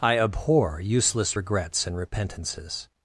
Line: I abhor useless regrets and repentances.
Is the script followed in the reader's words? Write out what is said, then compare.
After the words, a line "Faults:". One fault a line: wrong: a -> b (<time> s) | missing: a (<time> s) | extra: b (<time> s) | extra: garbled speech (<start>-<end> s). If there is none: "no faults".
I abhor useless regrets and repentances.
Faults:
no faults